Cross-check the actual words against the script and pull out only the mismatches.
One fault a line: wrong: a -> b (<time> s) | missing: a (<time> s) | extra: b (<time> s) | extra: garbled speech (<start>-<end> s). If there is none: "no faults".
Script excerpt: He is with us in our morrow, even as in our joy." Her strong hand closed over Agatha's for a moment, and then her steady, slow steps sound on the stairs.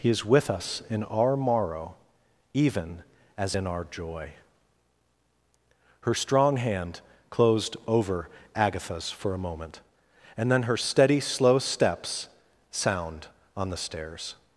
no faults